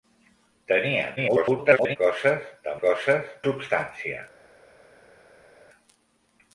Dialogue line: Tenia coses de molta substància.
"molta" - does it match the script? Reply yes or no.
no